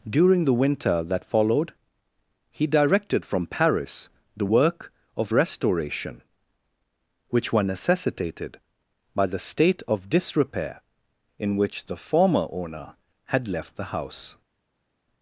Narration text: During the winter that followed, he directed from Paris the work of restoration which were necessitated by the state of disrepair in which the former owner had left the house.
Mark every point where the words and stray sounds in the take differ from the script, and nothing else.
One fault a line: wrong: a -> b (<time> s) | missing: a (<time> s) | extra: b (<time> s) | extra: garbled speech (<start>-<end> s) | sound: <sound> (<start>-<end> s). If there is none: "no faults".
no faults